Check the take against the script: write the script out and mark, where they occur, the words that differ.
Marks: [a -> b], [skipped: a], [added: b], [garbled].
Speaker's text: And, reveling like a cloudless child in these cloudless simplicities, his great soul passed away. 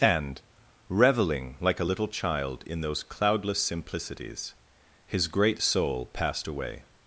And, reveling like a [cloudless -> little] child in [these -> those] cloudless simplicities, his great soul passed away.